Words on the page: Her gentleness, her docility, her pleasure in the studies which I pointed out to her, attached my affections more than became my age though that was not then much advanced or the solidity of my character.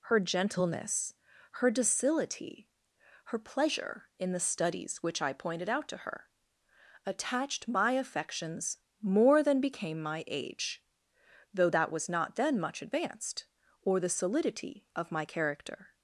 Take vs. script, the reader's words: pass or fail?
pass